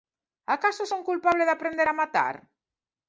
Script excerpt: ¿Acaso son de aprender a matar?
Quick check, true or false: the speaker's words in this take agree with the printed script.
false